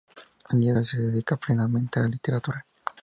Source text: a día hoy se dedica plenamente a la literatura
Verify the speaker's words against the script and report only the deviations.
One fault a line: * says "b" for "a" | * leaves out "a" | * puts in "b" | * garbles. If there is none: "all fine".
all fine